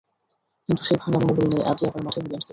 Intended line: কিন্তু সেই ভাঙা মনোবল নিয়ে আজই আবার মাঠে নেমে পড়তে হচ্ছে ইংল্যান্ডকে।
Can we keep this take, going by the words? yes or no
no